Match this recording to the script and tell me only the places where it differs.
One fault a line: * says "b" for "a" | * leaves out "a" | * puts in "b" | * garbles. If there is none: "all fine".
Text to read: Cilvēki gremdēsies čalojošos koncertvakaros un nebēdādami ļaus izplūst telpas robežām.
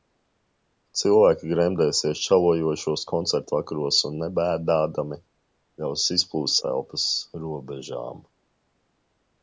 all fine